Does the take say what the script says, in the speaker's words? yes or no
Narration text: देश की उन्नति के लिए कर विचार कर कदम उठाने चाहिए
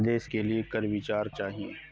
no